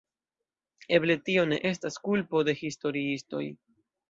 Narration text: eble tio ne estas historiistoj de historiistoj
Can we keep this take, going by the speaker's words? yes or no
no